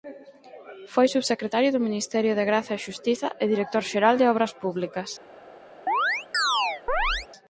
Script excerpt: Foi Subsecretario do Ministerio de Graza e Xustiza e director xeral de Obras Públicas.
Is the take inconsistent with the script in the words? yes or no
no